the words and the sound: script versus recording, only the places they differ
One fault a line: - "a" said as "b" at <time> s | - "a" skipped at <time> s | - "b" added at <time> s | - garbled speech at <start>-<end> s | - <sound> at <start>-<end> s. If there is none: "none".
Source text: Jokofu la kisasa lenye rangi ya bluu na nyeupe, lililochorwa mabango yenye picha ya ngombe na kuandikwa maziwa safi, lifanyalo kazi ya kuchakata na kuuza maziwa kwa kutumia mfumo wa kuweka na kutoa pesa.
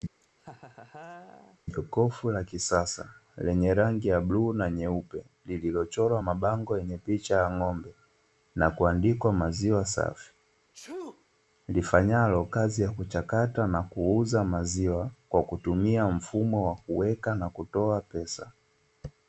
- laugh at 0.2-1.6 s
- sneeze at 10.7-11.3 s